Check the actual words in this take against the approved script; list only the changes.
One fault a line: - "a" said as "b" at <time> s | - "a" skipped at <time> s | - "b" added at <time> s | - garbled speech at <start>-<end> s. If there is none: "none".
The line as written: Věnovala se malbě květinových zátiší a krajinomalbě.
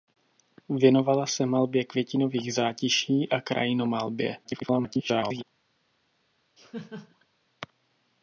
- garbled speech at 4.4-5.4 s